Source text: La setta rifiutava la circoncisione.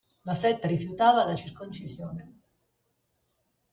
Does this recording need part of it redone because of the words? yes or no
no